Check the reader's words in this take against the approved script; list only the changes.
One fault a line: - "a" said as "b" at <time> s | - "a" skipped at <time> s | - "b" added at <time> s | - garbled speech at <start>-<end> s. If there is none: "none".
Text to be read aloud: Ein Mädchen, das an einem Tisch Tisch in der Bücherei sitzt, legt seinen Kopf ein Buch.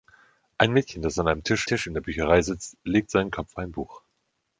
none